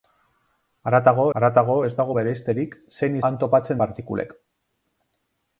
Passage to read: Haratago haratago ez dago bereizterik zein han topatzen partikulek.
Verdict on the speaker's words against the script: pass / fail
pass